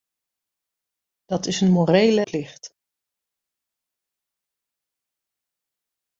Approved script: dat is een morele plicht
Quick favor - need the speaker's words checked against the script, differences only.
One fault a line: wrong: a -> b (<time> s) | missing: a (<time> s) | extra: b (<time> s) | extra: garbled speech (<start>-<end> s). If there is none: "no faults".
no faults